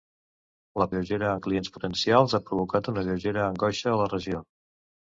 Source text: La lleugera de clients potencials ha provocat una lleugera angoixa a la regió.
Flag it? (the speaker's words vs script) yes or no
no